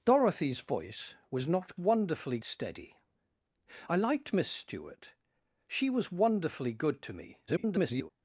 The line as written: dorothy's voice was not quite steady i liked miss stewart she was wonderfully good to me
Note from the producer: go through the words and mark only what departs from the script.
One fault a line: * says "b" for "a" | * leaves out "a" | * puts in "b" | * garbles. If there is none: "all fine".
* says "wonderfully" for "quite"
* garbles